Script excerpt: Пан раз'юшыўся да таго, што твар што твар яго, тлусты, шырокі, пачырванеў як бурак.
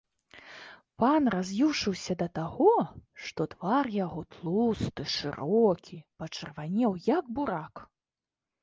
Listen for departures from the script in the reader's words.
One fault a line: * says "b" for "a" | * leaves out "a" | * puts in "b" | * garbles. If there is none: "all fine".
* leaves out "што твар"